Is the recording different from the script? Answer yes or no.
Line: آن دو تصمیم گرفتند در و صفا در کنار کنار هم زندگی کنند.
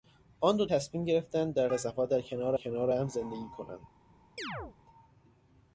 no